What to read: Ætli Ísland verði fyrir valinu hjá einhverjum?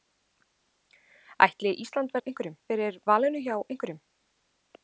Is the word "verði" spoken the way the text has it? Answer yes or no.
no